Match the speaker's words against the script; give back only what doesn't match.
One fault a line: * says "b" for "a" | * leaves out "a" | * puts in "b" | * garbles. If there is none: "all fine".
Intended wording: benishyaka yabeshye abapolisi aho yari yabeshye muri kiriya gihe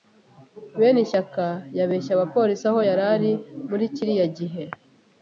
* says "ari" for "yabeshye"